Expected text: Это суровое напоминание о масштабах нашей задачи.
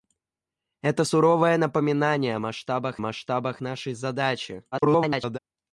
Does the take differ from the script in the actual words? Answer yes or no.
yes